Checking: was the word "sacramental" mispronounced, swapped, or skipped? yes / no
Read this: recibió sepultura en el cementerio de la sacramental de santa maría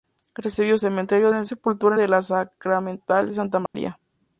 no